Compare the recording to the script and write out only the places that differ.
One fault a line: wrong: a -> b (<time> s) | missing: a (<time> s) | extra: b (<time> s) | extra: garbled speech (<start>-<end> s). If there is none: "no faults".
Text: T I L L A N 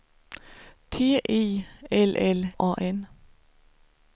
no faults